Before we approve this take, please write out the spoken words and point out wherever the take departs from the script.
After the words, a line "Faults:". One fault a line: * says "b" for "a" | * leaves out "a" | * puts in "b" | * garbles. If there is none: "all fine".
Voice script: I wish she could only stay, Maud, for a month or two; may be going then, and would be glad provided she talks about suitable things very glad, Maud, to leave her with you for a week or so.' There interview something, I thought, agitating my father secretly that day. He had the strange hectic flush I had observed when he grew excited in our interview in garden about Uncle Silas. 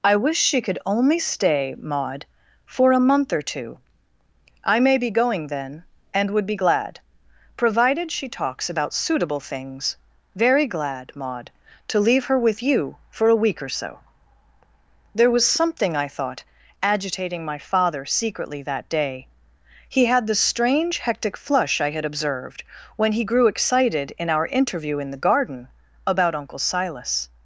I wish she could only stay, Maud, for a month or two; I may be going then, and would be glad provided she talks about suitable things very glad, Maud, to leave her with you for a week or so.' There was something, I thought, agitating my father secretly that day. He had the strange hectic flush I had observed when he grew excited in our interview in the garden about Uncle Silas.
Faults:
* puts in "I"
* says "was" for "interview"
* puts in "the"